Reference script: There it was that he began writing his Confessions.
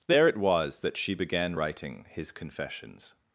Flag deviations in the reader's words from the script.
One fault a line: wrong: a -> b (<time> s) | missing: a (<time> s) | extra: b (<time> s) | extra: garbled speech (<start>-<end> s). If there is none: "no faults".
wrong: he -> she (1.0 s)